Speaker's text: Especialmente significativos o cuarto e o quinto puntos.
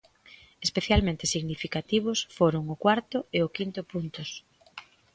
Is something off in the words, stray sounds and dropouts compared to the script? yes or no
yes